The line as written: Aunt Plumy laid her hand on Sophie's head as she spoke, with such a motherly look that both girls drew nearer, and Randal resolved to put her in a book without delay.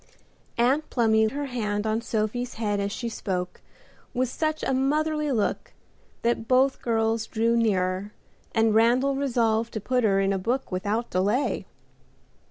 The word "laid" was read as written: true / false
false